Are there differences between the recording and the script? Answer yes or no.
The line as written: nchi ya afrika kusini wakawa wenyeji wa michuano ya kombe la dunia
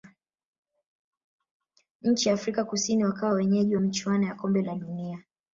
no